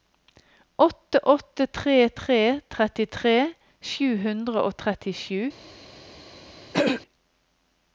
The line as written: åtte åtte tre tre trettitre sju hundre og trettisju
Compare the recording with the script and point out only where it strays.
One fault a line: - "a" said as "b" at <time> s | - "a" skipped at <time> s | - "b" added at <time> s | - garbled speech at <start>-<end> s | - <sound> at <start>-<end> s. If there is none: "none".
- throat clearing at 6.7-7.0 s